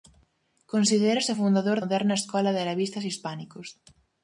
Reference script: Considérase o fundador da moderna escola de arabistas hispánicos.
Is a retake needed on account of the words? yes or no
yes